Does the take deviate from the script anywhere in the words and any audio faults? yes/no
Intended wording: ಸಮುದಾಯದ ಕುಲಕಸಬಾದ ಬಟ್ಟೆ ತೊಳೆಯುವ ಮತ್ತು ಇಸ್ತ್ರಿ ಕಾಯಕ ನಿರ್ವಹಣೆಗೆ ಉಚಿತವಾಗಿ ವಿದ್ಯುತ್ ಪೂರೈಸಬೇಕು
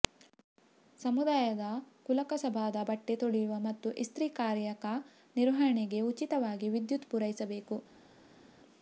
no